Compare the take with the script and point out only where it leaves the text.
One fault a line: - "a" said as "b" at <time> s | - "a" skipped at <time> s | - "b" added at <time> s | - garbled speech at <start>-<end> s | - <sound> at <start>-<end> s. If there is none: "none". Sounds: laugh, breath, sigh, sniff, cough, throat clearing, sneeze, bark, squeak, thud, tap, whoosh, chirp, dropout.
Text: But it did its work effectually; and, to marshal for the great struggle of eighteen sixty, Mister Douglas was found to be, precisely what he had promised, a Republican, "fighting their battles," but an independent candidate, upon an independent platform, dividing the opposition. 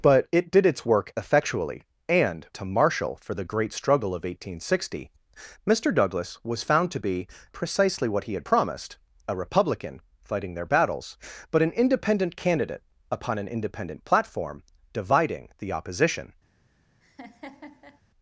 - laugh at 17.0-18.0 s